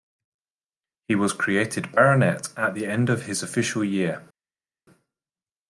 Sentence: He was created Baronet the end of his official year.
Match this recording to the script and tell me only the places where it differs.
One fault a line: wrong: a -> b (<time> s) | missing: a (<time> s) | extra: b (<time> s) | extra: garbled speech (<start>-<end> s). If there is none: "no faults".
extra: at (2.5 s)